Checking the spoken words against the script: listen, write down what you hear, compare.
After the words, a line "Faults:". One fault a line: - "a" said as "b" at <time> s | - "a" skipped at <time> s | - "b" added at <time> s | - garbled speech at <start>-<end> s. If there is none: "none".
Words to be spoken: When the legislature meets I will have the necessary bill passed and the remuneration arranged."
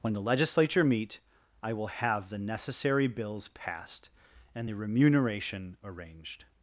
When the legislature meet I will have the necessary bills passed and the remuneration arranged."
Faults:
- "meets" said as "meet" at 0.8 s
- "bill" said as "bills" at 3.1 s